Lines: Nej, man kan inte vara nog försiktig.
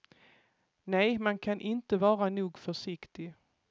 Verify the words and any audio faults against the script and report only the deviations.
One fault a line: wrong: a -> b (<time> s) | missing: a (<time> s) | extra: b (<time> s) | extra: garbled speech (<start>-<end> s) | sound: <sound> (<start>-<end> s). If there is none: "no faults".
no faults